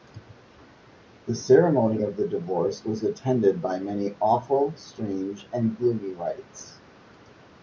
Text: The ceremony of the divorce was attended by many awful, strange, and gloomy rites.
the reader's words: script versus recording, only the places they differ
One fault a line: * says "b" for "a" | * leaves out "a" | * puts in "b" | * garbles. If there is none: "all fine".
all fine